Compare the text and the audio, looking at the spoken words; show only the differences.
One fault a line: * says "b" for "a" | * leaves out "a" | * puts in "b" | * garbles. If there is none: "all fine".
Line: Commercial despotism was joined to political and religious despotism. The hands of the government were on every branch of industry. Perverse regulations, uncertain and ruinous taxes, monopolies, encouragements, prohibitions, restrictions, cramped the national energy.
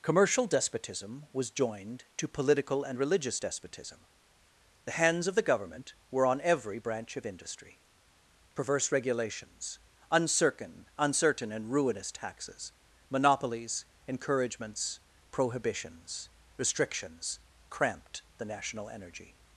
* puts in "uncertain"